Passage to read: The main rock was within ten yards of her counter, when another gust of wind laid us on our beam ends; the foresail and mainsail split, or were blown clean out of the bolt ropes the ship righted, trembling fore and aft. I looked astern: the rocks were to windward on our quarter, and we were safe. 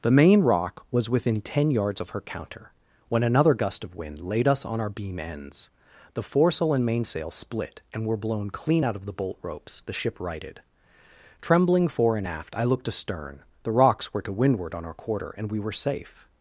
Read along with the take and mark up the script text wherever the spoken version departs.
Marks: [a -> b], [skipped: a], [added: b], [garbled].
The main rock was within ten yards of her counter, when another gust of wind laid us on our beam ends; the foresail and mainsail split, [or -> and] were blown clean out of the bolt ropes the ship righted, trembling fore and aft. I looked astern: the rocks were to windward on our quarter, and we were safe.